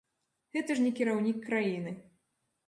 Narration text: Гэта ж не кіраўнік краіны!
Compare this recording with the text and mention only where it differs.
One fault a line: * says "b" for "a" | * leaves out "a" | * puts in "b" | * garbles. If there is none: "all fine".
all fine